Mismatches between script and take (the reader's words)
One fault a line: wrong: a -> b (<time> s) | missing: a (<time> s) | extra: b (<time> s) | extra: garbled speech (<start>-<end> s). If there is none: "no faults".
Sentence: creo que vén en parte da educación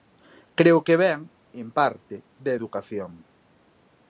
no faults